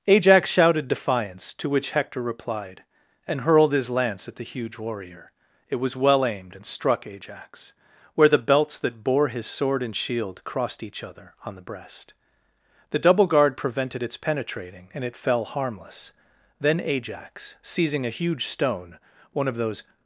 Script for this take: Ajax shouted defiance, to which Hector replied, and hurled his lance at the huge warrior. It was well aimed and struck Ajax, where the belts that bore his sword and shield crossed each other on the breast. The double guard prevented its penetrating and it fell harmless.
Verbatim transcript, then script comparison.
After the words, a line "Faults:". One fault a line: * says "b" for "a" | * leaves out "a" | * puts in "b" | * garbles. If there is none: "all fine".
Ajax shouted defiance, to which Hector replied, and hurled his lance at the huge warrior. It was well aimed and struck Ajax, where the belts that bore his sword and shield crossed each other on the breast. The double guard prevented its penetrating and it fell harmless. Then Ajax, seizing a huge stone, one of those
Faults:
* puts in "Then Ajax seizing a huge stone one of those"